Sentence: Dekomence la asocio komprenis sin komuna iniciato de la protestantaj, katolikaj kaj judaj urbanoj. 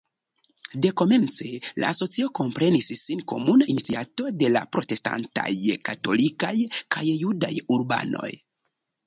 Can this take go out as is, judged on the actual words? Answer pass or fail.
pass